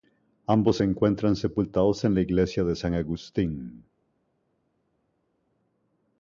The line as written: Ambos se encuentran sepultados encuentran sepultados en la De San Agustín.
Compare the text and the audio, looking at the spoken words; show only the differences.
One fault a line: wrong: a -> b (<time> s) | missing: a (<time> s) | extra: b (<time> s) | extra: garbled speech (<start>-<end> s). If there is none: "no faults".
missing: encuentran sepultados (2.1 s)
extra: Iglesia (2.2 s)